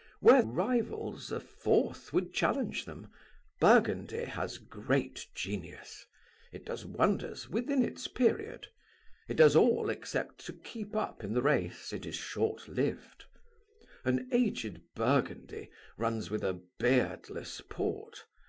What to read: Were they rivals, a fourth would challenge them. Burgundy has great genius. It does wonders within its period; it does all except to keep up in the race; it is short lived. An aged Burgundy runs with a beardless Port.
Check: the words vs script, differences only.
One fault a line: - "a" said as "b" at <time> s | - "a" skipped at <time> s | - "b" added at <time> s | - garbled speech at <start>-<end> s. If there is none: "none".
- "they" skipped at 0.4 s